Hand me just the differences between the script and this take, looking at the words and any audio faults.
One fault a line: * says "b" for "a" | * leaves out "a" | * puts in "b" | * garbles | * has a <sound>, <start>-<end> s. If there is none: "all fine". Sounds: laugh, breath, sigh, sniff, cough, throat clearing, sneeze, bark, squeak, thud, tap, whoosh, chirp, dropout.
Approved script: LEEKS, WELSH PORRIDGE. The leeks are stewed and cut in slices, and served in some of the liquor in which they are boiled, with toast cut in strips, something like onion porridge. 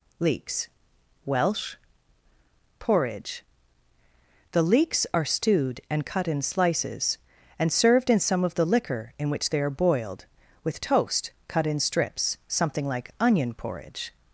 all fine